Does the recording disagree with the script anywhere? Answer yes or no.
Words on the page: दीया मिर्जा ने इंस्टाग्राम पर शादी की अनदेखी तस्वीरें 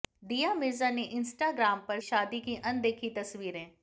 no